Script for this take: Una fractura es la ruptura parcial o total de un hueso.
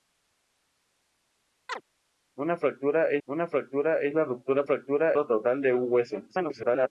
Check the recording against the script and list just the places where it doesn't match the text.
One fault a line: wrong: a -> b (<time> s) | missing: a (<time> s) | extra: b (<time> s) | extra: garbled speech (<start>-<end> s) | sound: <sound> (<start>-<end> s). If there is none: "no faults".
sound: chirp (1.7-1.8 s)
extra: una fractura es (3.3 s)
wrong: parcial -> fractura (4.6 s)
extra: garbled speech (6.3-6.9 s)